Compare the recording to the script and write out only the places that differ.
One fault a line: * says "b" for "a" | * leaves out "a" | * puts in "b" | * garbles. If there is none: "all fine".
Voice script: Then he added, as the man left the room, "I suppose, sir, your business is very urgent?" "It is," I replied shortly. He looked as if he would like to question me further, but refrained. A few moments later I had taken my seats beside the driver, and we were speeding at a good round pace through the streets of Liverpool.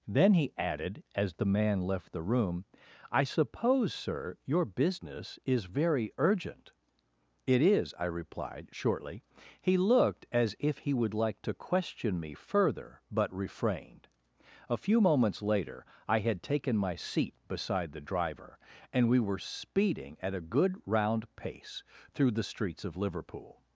* says "seat" for "seats"